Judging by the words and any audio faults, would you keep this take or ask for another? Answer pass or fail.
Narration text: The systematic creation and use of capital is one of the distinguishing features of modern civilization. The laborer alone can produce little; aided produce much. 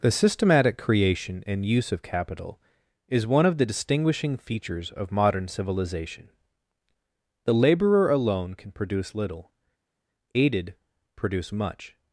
pass